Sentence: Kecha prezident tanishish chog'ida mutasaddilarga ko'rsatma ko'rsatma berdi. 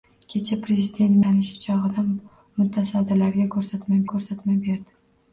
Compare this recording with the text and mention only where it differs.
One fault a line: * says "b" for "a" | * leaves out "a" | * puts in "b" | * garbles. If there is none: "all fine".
all fine